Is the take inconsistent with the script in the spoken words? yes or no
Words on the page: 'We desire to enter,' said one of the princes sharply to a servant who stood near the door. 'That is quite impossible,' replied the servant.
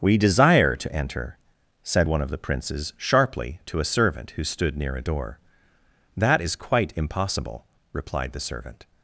yes